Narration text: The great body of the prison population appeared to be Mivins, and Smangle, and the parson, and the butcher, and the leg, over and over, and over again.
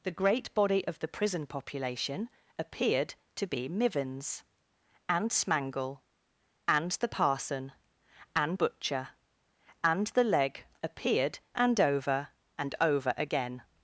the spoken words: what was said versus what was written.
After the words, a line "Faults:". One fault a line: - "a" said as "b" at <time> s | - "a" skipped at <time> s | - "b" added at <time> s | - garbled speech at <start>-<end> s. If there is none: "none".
The great body of the prison population appeared to be Mivins, and Smangle, and the parson, and butcher, and the leg, appeared and over, and over again.
Faults:
- "the" skipped at 8.6 s
- "over" said as "appeared" at 10.8 s